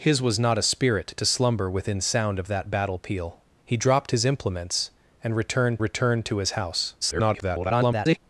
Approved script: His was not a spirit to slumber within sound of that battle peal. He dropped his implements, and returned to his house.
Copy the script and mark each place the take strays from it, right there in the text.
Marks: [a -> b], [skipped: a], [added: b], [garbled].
His was not a spirit to slumber within sound of that battle peal. He dropped his implements, and returned [added: returned] to his house. [garbled]